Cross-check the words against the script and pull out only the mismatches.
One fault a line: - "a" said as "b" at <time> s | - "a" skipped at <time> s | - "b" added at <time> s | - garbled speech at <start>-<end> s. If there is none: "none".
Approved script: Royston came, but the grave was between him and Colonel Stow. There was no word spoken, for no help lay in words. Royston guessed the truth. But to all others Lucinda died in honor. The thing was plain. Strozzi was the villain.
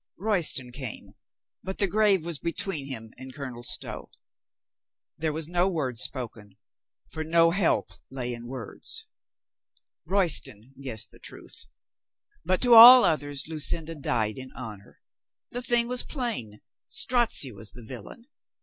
none